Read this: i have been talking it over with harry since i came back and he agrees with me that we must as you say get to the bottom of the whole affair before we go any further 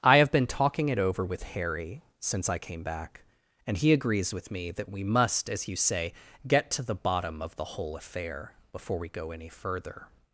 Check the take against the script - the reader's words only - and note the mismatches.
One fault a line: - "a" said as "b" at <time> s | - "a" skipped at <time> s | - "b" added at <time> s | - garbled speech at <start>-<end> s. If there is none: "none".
none